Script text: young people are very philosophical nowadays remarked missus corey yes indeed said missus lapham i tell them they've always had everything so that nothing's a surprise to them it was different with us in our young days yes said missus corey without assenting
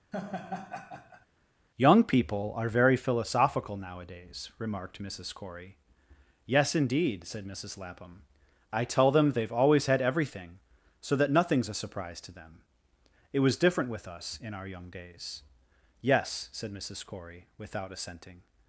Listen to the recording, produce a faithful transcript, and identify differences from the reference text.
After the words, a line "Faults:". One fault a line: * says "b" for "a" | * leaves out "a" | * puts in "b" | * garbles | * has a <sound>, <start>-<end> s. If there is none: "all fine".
young people are very philosophical nowadays remarked missus corey yes indeed said missus lapham i tell them they've always had everything so that nothing's a surprise to them it was different with us in our young days yes said missus corey without assenting
Faults:
* has a laugh, 0.1-1.3 s